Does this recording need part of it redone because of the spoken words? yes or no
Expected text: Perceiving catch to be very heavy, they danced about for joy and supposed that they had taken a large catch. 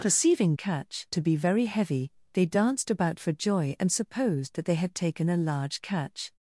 no